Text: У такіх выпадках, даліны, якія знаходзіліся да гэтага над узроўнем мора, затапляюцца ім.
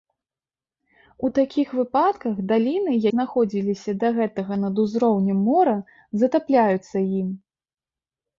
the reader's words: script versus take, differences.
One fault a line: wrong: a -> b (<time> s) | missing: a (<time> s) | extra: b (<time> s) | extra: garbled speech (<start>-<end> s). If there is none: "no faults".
missing: якія (2.9 s)